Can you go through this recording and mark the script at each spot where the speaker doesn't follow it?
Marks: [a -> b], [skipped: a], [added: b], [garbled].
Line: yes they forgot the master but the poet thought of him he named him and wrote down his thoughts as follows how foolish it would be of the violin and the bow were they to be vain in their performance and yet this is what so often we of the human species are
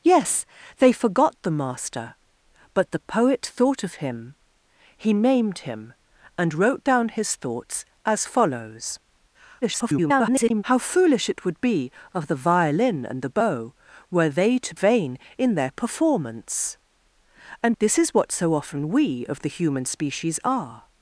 yes they forgot the master but the poet thought of him he named him and wrote down his thoughts as follows [garbled] how foolish it would be of the violin and the bow were they to [skipped: be] vain in their performance and [skipped: yet] this is what so often we of the human species are